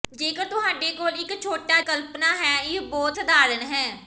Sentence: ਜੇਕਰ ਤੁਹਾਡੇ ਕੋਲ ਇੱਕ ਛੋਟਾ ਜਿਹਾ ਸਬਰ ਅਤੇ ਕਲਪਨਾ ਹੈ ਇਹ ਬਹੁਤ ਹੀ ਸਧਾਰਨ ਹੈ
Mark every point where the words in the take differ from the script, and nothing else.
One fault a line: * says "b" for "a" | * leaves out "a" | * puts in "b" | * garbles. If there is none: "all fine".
* leaves out "ਜਿਹਾ ਸਬਰ ਅਤੇ"
* leaves out "ਹੀ"